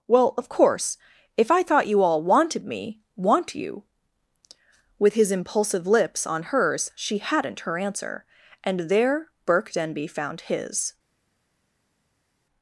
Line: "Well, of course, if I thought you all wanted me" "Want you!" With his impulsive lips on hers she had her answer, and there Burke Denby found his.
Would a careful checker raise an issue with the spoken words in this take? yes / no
yes